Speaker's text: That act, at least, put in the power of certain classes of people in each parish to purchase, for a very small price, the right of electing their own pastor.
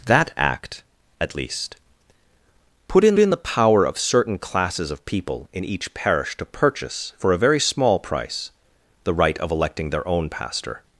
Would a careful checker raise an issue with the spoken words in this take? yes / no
yes